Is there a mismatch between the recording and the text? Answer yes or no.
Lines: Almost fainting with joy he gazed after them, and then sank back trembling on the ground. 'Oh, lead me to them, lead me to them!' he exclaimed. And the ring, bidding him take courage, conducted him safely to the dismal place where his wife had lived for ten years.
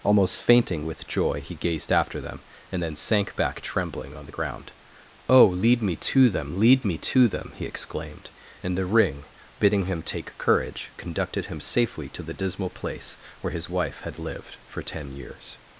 no